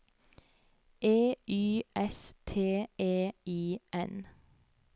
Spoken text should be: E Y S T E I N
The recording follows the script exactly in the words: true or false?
true